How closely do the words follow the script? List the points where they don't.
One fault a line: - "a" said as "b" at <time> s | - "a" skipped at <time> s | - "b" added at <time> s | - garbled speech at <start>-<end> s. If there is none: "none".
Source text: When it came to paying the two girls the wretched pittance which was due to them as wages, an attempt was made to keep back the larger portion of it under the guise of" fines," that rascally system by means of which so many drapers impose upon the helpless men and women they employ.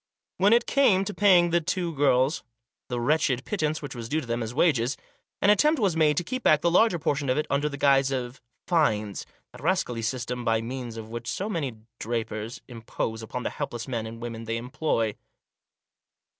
none